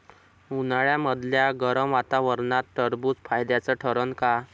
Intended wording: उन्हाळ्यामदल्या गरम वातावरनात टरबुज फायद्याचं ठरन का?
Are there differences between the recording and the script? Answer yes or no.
no